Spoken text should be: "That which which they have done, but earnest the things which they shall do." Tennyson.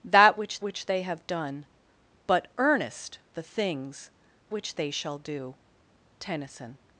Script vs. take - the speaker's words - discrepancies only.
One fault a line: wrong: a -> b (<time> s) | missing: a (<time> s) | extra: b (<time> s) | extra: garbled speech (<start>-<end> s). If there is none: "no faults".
no faults